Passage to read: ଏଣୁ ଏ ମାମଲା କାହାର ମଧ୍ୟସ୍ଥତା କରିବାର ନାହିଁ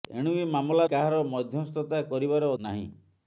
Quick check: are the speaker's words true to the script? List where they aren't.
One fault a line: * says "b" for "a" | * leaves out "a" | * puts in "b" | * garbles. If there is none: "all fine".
all fine